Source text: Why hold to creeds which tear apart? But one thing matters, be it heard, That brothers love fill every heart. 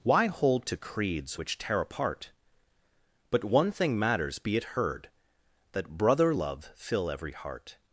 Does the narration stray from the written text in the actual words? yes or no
yes